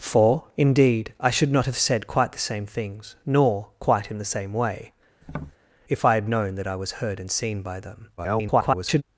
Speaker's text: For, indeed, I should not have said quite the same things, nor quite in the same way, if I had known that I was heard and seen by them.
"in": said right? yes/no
yes